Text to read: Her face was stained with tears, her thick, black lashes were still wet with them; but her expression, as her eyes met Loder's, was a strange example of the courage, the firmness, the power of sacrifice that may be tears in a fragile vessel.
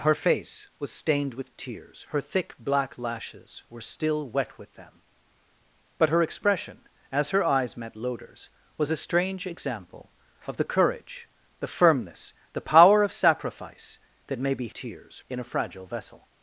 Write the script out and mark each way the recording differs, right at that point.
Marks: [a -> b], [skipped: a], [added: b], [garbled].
Her face was stained with tears, her thick, black lashes were still wet with them; but her expression, as her eyes met Loder's, was a strange example of the courage, the firmness, the power of sacrifice that may be tears in a fragile vessel.